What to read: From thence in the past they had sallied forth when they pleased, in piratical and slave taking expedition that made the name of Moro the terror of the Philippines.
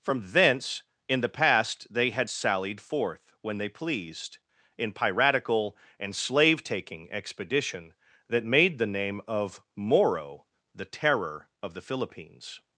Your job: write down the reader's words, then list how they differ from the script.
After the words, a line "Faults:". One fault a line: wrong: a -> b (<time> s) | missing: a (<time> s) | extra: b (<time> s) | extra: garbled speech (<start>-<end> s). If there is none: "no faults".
From thence in the past they had sallied forth when they pleased, in piratical and slave taking expedition that made the name of Moro the terror of the Philippines.
Faults:
no faults